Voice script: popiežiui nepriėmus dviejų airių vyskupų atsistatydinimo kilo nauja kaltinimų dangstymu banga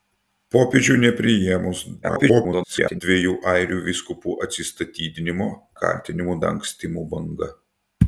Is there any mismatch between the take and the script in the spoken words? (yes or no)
yes